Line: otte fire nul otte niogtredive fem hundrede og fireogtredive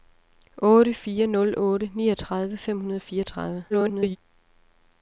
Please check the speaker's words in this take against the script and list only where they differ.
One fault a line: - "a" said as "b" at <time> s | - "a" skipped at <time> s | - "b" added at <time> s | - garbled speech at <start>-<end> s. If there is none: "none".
- garbled speech at 3.7-4.2 s